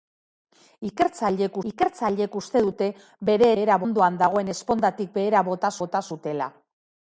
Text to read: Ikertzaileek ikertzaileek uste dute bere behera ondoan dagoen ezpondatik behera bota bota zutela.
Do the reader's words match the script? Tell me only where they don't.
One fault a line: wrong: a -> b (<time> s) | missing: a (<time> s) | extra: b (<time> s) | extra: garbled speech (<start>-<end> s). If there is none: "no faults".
no faults